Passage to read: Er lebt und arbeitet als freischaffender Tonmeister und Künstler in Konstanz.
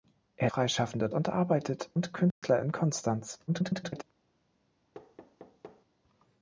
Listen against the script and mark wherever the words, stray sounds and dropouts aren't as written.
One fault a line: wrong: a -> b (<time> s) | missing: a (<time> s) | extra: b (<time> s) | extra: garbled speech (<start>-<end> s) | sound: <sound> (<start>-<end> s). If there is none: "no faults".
wrong: lebt -> freischaffender (0.5 s)
missing: als freischaffender Tonmeister (1.9 s)
sound: dropout (2.3-2.4 s)
extra: garbled speech (3.5-4.0 s)
sound: thud (4.9-5.9 s)